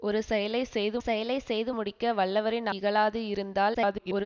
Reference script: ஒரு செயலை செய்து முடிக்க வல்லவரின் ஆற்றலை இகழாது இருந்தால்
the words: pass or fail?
fail